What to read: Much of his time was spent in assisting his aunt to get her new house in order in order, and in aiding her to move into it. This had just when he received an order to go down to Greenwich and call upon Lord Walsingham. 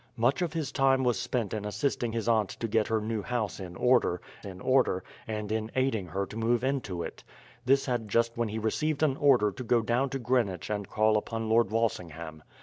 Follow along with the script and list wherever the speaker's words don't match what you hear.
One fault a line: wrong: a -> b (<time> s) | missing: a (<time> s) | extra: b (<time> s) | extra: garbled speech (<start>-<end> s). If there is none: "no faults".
no faults